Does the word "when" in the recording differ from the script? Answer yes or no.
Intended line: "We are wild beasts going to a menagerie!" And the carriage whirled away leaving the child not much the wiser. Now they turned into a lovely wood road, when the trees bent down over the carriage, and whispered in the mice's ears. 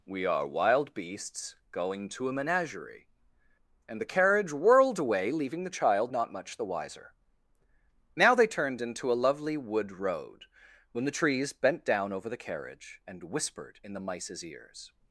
no